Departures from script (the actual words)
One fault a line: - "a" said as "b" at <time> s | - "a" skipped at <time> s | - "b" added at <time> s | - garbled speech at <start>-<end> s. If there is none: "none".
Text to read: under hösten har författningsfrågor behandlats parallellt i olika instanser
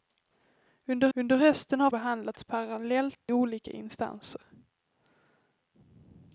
- "under" added at 1.1 s
- "författningsfrågor" skipped at 1.9 s
- "i" skipped at 3.3 s